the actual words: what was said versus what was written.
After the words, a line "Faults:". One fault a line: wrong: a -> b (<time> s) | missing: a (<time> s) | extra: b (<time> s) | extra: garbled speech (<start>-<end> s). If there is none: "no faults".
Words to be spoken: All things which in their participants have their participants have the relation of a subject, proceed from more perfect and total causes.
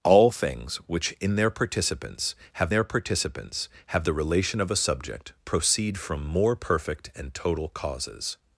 All things which in their participants have their participants have the relation of a subject, proceed from more perfect and total causes.
Faults:
no faults